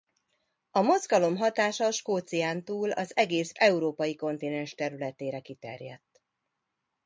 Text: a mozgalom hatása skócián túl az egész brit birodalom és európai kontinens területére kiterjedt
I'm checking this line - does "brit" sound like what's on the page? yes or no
no